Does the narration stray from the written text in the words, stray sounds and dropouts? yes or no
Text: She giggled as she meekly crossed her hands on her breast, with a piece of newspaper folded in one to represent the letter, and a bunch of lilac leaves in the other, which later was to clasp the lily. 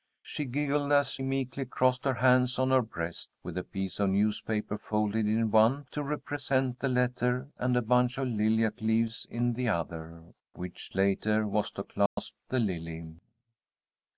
yes